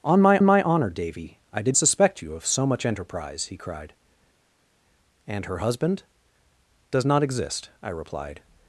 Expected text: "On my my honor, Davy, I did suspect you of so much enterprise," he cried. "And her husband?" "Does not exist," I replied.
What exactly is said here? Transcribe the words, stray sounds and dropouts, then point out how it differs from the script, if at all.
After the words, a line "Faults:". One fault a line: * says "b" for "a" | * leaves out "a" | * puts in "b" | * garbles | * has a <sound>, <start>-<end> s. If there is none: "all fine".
"On my my honor, Davy, I did suspect you of so much enterprise," he cried. "And her husband?" "Does not exist," I replied.
Faults:
all fine